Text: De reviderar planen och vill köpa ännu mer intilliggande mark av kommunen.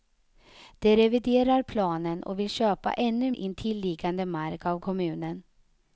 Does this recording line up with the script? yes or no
no